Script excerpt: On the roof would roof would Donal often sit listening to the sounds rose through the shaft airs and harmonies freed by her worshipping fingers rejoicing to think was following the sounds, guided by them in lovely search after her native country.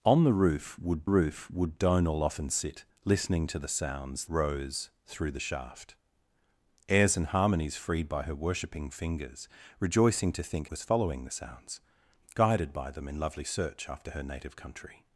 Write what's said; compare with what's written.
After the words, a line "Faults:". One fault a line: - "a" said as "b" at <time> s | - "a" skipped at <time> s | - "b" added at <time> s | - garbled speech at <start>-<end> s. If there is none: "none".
On the roof would roof would Donal often sit listening to the sounds rose through the shaft airs and harmonies freed by her worshipping fingers rejoicing to think was following the sounds, guided by them in lovely search after her native country.
Faults:
none